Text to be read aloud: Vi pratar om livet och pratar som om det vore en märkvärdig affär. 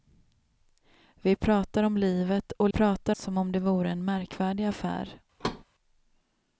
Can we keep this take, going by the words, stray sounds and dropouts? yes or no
no